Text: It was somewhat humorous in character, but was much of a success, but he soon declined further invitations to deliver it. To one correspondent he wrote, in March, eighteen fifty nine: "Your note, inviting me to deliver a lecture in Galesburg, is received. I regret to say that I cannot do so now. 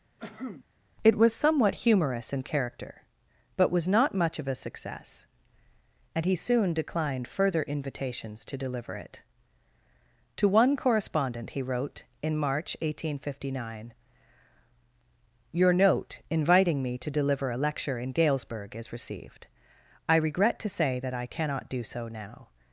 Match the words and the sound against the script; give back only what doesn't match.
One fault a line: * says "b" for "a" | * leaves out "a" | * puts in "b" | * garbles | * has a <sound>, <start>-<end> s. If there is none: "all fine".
* has a cough, 0.2-0.6 s
* puts in "not"
* says "and" for "but"